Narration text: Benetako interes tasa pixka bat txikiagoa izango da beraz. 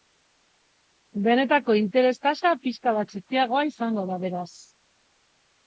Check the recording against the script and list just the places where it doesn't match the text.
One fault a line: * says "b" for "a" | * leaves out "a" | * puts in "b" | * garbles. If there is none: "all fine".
all fine